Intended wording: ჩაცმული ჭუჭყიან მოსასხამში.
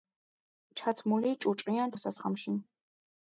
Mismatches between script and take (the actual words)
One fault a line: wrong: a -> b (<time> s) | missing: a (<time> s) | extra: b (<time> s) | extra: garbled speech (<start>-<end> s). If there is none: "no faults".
no faults